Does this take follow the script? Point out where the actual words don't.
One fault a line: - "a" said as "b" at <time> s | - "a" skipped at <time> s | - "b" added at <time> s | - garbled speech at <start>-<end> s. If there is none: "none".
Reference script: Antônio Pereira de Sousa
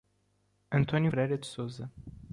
none